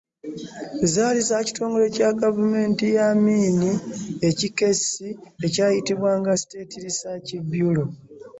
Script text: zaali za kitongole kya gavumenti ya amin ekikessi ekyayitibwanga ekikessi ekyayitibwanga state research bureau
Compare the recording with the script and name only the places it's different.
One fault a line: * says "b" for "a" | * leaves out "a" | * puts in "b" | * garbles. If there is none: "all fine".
* leaves out "ekikessi ekyayitibwanga"